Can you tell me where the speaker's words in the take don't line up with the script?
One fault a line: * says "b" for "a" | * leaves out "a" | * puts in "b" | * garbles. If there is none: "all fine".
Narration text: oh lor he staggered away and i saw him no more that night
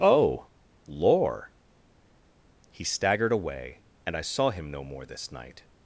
* says "this" for "that"